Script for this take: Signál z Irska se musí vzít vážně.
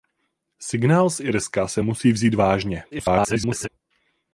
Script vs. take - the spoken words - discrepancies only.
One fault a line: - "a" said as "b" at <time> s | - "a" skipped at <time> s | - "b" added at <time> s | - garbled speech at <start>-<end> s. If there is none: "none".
- garbled speech at 2.9-3.7 s